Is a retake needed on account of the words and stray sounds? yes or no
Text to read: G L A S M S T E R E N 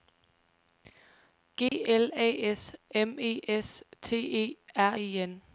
yes